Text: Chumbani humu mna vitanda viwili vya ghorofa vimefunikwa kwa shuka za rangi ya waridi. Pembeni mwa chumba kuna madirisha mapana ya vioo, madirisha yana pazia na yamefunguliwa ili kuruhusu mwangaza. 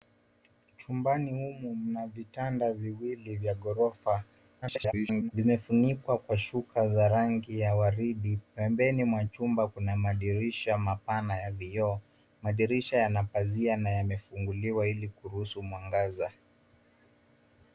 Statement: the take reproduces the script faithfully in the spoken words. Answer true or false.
false